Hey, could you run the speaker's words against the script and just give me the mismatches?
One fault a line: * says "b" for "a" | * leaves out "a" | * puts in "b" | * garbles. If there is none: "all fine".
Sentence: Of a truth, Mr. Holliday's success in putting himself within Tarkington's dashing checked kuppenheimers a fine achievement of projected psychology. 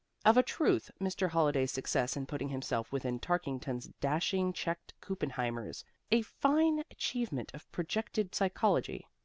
all fine